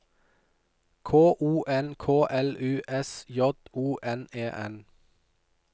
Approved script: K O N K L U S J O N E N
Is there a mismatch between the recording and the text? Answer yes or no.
no